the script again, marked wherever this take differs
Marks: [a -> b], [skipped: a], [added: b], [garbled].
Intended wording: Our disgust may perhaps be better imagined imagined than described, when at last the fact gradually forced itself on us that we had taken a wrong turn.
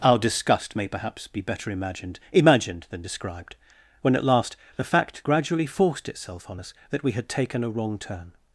Our disgust may perhaps be better imagined imagined than described, when at last the fact gradually forced itself on us that we had taken a wrong turn.